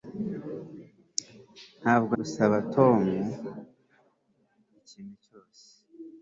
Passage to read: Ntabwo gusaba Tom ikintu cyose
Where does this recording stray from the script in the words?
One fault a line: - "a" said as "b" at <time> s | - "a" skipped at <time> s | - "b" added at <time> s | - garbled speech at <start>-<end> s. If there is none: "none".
none